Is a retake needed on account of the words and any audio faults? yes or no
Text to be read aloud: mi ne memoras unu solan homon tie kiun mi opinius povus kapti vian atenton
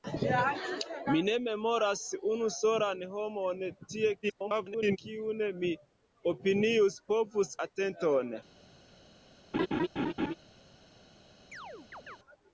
yes